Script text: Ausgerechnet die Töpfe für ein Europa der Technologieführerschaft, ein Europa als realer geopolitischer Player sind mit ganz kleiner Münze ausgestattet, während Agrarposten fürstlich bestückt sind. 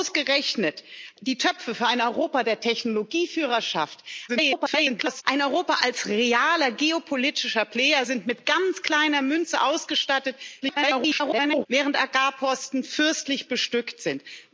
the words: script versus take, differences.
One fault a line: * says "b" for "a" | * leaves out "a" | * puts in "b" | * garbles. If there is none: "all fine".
* garbles
* garbles